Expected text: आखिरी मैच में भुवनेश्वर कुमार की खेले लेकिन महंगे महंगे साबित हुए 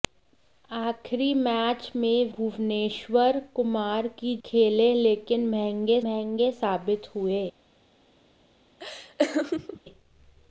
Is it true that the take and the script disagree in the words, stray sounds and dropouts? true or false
true